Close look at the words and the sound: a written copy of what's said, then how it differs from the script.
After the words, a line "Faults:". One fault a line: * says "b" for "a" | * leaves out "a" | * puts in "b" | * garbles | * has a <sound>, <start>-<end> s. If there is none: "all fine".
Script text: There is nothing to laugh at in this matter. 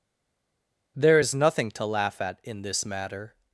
There is nothing to laugh at in this matter.
Faults:
all fine